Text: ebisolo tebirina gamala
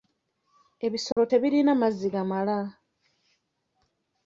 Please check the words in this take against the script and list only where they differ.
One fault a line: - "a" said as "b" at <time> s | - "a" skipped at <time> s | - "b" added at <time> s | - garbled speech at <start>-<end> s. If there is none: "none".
- "mazzi" added at 1.8 s